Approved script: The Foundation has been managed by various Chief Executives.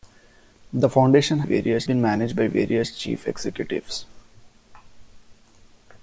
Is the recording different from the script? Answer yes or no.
yes